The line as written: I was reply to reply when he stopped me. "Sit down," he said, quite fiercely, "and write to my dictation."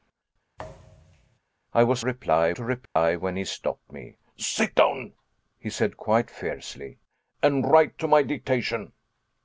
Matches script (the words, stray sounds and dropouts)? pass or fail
fail